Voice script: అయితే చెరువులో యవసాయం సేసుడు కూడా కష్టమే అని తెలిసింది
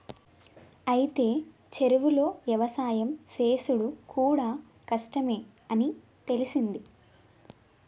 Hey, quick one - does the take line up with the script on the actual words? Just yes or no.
yes